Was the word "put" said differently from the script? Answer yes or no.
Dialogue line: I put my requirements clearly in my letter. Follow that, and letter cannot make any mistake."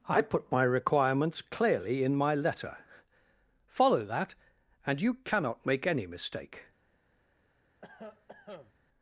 no